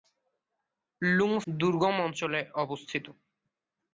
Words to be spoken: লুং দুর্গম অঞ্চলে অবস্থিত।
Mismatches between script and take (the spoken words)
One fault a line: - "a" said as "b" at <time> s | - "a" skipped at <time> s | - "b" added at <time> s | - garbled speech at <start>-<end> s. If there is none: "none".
none